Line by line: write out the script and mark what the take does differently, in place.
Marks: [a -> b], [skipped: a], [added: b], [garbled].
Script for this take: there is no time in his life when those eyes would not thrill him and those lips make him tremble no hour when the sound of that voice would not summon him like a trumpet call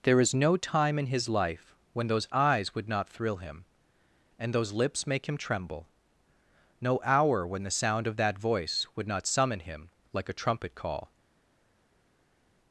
there is no time in his life when those eyes would not thrill him and those lips make him tremble no hour when the sound of that voice would not summon him like a trumpet call